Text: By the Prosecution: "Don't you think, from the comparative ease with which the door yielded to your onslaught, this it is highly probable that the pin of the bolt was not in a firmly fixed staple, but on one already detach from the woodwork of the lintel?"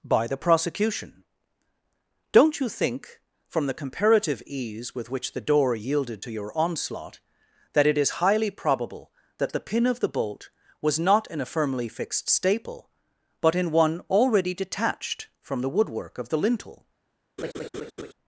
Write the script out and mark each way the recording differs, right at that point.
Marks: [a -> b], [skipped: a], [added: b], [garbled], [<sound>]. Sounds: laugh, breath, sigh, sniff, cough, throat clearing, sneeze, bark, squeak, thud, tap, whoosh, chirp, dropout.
By the Prosecution: "Don't you think, from the comparative ease with which the door yielded to your onslaught, [this -> that] it is highly probable that the pin of the bolt was not in a firmly fixed staple, but [on -> in] one already [detach -> detached] from the woodwork of the lintel?" [laugh]